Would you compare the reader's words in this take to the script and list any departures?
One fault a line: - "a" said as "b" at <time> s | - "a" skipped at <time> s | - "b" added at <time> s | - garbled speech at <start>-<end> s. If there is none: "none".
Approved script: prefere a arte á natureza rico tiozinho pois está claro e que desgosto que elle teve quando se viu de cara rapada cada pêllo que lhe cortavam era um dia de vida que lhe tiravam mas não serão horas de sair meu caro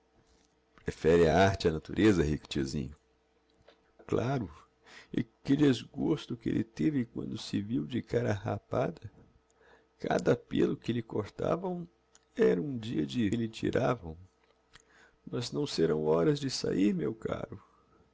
- "pois está" skipped at 2.9 s
- "vida que" skipped at 13.3 s